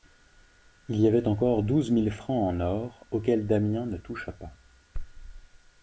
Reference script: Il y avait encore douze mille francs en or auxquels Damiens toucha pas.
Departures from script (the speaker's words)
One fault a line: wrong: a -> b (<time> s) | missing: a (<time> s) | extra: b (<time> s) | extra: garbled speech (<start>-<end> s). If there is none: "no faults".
extra: ne (3.9 s)